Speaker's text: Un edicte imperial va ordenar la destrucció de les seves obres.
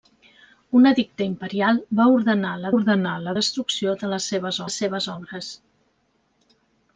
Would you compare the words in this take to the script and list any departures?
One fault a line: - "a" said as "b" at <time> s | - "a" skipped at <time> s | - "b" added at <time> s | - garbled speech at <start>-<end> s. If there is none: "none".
- "ordenar la" added at 2.7 s
- "les seves" added at 4.6 s